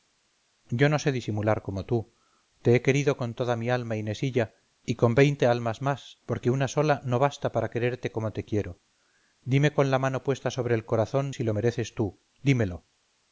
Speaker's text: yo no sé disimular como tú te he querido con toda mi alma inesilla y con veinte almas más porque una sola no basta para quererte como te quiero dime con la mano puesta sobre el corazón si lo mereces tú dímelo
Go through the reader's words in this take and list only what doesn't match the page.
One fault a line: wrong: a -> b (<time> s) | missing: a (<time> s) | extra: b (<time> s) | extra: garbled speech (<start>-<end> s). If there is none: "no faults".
no faults